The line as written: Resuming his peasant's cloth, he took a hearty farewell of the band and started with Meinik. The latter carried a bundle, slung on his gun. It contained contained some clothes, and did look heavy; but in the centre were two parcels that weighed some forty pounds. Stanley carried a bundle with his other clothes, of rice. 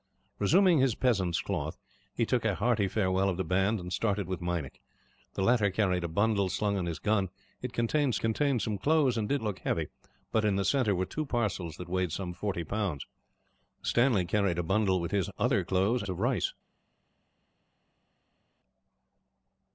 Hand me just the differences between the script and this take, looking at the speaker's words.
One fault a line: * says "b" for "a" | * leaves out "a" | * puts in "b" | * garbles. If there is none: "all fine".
all fine